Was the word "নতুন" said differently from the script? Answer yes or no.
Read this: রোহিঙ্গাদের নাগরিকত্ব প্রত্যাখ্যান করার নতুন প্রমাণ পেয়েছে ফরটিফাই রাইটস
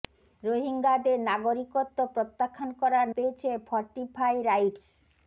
yes